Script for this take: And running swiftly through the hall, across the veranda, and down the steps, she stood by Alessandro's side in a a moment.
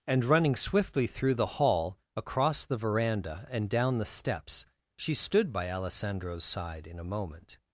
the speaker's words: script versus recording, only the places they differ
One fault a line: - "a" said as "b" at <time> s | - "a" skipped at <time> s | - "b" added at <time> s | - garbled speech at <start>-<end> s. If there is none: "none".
- "a" skipped at 7.1 s